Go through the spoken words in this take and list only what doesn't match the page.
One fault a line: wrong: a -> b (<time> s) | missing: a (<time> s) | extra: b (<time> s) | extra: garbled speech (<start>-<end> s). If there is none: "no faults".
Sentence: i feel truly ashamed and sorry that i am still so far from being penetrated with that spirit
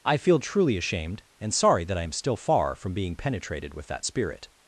missing: so (2.4 s)